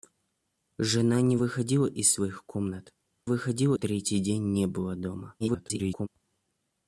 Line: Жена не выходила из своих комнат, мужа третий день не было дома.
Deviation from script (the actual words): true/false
true